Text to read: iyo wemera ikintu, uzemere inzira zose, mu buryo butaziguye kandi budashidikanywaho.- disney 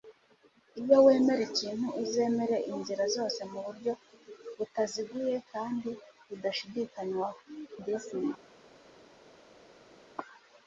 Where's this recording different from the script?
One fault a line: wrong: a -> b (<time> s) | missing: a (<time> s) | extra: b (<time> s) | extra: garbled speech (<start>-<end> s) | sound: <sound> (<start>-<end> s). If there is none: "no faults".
no faults